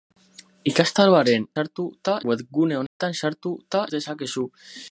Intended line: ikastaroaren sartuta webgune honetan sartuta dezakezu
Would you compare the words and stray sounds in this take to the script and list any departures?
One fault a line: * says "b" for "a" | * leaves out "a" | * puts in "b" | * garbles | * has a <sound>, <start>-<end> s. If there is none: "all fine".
* has a dropout, 2.9-3.0 s